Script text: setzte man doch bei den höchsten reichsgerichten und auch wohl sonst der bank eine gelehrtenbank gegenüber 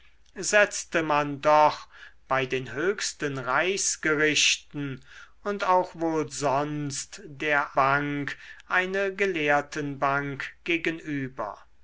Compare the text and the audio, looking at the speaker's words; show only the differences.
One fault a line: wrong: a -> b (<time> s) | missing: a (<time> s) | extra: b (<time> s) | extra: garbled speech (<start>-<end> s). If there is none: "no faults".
no faults